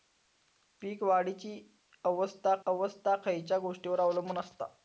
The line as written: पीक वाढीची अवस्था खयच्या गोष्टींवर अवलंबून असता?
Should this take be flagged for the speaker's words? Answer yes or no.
yes